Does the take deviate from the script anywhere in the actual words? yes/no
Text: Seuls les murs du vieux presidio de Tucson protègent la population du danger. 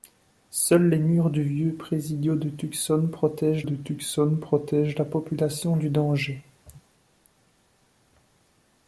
yes